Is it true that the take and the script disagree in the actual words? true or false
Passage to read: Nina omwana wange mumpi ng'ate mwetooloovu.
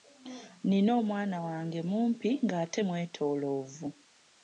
false